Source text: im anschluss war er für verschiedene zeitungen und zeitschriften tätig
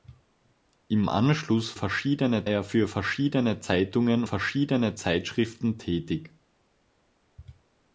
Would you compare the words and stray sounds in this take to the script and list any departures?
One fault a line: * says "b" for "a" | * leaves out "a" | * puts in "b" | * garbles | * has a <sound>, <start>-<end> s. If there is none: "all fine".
* says "verschiedene" for "war"
* says "verschiedene" for "und"